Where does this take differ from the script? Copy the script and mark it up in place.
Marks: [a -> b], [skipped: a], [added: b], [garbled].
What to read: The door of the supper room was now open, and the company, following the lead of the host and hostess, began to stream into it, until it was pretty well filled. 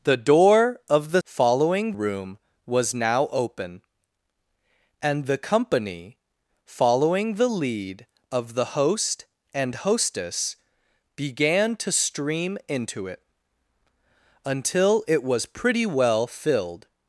The door of the [supper -> following] room was now open, and the company, following the lead of the host and hostess, began to stream into it, until it was pretty well filled.